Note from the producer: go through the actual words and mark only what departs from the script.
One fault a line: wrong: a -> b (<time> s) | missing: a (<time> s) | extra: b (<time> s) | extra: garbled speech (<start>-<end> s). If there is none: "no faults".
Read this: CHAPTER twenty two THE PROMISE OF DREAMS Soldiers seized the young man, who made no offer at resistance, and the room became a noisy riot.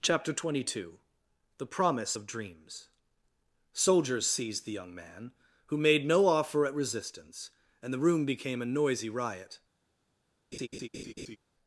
no faults